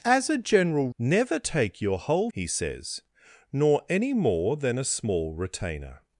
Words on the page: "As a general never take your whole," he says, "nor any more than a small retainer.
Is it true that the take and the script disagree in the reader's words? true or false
false